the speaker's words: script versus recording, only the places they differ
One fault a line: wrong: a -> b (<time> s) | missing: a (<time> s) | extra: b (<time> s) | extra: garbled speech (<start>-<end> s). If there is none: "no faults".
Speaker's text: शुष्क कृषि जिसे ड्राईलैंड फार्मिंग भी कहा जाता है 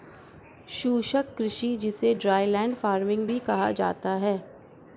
no faults